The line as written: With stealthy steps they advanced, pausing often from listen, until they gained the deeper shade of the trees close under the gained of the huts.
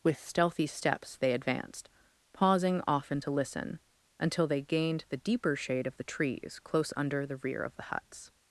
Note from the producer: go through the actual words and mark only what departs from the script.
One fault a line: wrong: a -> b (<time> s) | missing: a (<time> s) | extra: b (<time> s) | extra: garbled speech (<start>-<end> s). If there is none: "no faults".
wrong: from -> to (3.2 s)
wrong: gained -> rear (7.4 s)